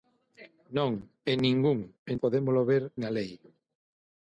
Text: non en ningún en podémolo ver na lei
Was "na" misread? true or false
false